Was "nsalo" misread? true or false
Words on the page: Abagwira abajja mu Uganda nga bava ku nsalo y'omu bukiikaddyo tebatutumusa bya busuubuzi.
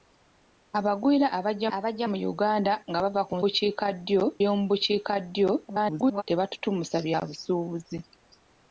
true